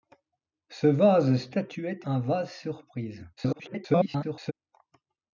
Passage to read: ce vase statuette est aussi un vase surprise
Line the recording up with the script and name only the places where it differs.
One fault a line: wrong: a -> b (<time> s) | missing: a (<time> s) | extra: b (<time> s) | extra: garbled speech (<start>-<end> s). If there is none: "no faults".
missing: est aussi (2.1 s)
extra: garbled speech (3.4-4.5 s)